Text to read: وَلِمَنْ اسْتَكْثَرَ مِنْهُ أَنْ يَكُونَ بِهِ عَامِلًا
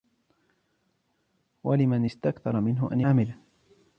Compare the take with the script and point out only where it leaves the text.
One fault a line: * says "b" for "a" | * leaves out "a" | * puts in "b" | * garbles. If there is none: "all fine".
* leaves out "يَكُونَ بِهِ"